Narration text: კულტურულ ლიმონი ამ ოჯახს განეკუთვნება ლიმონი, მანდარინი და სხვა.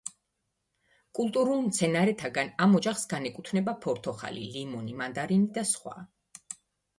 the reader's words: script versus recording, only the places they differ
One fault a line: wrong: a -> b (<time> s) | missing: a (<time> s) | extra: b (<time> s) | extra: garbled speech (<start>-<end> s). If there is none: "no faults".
wrong: ლიმონი -> მცენარეთაგან (1.6 s)
extra: ფორთოხალი (3.9 s)